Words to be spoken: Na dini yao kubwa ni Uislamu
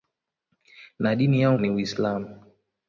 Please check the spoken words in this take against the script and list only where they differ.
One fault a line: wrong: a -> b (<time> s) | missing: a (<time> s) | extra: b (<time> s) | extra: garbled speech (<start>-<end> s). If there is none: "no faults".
missing: kubwa (1.6 s)